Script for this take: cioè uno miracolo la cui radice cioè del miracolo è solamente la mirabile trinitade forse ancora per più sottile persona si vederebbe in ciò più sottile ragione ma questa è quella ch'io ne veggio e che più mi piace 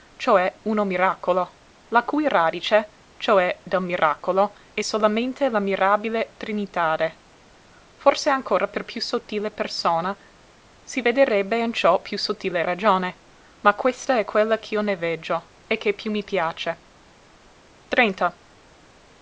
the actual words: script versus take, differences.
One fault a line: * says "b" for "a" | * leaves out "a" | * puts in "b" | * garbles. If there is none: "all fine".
all fine